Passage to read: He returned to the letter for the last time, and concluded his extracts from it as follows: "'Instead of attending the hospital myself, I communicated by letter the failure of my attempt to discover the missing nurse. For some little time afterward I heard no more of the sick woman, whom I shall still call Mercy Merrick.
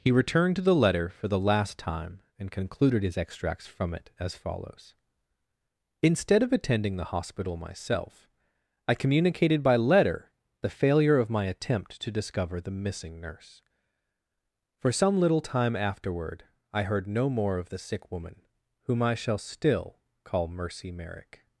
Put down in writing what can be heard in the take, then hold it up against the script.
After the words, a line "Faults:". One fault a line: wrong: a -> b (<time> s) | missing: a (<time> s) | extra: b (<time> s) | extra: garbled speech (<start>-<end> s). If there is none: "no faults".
He returned to the letter for the last time, and concluded his extracts from it as follows: "'Instead of attending the hospital myself, I communicated by letter the failure of my attempt to discover the missing nurse. For some little time afterward I heard no more of the sick woman, whom I shall still call Mercy Merrick.
Faults:
no faults